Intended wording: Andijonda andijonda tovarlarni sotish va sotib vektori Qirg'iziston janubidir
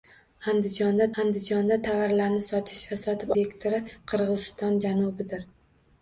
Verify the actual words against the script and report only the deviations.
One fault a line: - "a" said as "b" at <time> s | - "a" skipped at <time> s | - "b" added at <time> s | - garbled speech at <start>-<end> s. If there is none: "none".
none